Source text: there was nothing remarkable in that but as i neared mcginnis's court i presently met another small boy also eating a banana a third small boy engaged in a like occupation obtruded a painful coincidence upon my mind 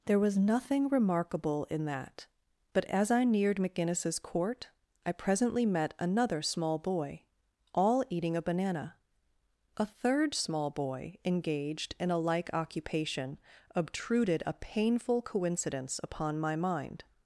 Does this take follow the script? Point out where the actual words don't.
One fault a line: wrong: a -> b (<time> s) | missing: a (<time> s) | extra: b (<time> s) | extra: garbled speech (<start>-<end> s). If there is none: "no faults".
wrong: also -> all (7.7 s)